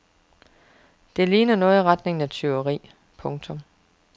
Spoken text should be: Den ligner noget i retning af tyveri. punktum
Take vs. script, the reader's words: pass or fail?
fail